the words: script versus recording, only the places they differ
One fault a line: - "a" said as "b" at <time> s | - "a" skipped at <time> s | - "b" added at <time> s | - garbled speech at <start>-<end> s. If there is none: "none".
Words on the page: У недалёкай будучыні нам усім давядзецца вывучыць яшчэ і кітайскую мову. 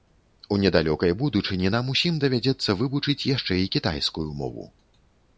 none